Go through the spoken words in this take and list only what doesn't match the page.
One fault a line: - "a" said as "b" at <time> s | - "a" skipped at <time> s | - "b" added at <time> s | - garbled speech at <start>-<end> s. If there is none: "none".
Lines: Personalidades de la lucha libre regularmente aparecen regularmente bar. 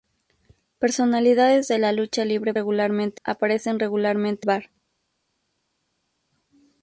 none